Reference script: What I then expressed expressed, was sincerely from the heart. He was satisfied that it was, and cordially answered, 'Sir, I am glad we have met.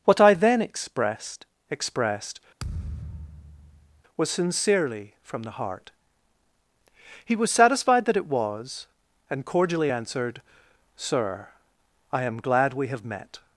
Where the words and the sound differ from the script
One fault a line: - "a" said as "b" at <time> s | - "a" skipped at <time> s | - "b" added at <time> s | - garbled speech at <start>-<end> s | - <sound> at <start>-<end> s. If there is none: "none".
- thud at 2.6-4.0 s